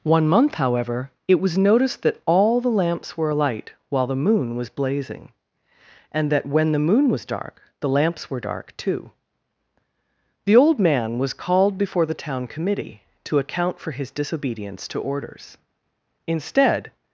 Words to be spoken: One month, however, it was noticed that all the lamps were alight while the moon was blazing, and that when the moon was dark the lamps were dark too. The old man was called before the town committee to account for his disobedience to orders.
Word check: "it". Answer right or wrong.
right